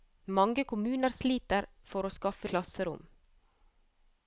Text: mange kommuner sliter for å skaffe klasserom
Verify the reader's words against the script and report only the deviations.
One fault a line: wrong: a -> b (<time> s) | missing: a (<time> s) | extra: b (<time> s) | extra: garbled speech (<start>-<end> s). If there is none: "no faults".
no faults